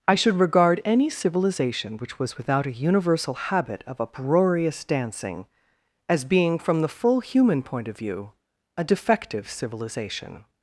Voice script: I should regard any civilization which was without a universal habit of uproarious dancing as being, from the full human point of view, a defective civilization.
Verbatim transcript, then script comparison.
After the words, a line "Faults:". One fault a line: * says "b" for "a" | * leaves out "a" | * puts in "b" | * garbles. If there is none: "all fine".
I should regard any civilization which was without a universal habit of uproarious dancing as being, from the full human point of view, a defective civilization.
Faults:
all fine